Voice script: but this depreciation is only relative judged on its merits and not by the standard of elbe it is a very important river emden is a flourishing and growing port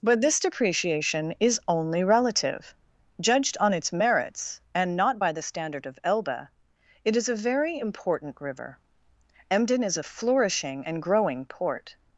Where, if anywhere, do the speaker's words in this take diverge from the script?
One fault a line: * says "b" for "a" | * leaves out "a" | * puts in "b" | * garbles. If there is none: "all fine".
all fine